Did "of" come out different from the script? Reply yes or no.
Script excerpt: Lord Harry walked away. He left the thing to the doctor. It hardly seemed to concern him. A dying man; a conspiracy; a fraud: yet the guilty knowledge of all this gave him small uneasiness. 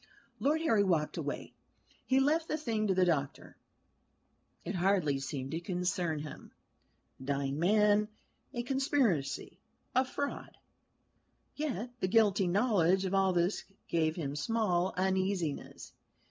no